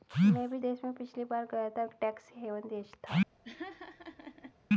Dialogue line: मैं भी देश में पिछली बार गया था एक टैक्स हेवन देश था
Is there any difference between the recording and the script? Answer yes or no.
no